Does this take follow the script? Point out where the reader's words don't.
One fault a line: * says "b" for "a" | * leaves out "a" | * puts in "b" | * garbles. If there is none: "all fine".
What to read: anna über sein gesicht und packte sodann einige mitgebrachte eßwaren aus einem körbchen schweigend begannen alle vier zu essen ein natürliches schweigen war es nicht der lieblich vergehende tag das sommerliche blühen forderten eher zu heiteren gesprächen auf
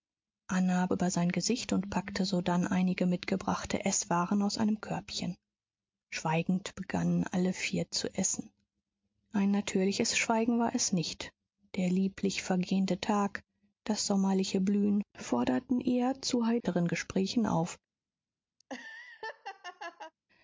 all fine